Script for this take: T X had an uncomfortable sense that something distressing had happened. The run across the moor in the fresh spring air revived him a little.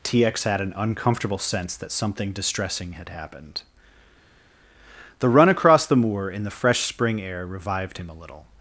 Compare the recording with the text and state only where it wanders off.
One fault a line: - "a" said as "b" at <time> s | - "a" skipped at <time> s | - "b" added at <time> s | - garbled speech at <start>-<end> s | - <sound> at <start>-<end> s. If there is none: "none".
none